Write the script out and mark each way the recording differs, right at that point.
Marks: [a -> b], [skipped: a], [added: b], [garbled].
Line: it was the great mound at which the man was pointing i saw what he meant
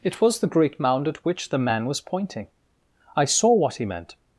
it was the great mound at which the man was pointing i saw what he meant